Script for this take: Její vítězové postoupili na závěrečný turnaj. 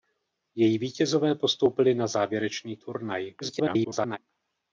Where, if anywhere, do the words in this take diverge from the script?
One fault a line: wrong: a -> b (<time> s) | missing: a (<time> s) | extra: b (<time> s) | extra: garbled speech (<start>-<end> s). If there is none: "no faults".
extra: garbled speech (3.4-4.2 s)